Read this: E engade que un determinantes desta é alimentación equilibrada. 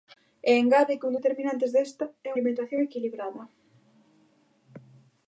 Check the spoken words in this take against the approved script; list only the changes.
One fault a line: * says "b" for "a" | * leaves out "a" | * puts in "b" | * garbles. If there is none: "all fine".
all fine